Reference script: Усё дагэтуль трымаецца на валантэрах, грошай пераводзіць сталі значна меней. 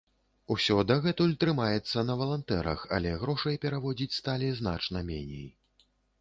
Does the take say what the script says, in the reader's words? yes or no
no